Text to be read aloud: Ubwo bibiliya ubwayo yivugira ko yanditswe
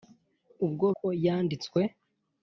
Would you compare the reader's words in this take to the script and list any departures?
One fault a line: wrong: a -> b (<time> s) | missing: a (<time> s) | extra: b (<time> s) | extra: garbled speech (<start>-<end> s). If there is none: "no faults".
missing: bibiliya ubwayo yivugira (0.8 s)